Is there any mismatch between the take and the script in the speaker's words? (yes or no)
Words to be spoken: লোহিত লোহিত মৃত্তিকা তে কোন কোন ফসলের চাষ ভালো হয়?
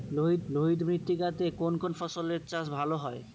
no